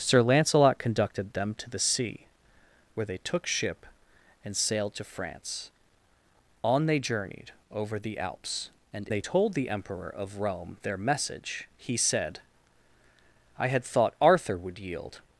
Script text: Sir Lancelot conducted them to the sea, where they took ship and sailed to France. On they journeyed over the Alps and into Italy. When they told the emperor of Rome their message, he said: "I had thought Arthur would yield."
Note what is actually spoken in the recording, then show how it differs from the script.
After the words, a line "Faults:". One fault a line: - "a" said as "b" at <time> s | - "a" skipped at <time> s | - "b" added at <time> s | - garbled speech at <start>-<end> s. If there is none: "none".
Sir Lancelot conducted them to the sea, where they took ship and sailed to France. On they journeyed over the Alps and they told the emperor of Rome their message, he said: "I had thought Arthur would yield."
Faults:
- "into Italy When" skipped at 9.1 s